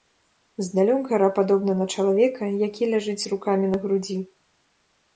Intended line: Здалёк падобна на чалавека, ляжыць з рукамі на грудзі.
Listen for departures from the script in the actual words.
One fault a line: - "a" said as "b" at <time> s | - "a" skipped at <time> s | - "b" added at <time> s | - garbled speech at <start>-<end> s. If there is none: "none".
- "гара" added at 1.1 s
- "які" added at 2.7 s